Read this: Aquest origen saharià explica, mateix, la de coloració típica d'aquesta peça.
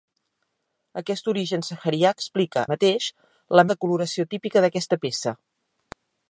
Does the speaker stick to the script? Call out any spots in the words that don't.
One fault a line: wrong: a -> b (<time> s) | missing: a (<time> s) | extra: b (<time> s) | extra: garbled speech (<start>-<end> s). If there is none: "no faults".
no faults